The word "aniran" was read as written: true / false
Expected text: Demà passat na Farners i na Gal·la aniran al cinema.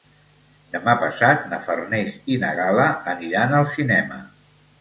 true